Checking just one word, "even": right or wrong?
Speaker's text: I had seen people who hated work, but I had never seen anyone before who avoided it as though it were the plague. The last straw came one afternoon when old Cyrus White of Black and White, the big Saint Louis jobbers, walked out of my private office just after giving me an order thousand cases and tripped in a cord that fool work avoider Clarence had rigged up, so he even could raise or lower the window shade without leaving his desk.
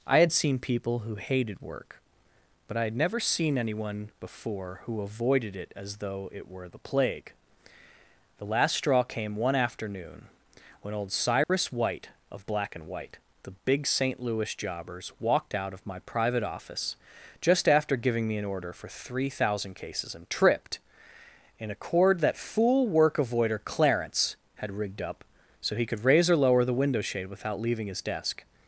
wrong